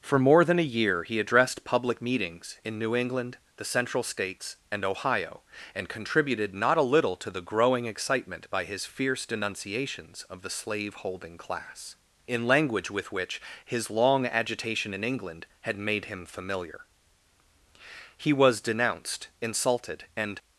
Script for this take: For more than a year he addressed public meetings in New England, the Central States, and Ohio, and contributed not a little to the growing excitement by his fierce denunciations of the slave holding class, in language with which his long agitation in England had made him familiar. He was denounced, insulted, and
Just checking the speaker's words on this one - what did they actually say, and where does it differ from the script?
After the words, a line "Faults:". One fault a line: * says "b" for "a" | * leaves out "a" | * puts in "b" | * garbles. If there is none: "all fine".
For more than a year he addressed public meetings in New England, the Central States, and Ohio, and contributed not a little to the growing excitement by his fierce denunciations of the slave holding class, in language with which his long agitation in England had made him familiar. He was denounced, insulted, and
Faults:
all fine